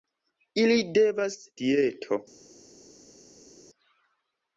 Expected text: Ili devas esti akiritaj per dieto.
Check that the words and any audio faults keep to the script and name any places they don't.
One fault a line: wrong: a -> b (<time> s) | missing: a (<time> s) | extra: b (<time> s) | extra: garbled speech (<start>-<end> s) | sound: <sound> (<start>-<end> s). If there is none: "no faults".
missing: esti akiritaj per (1.4 s)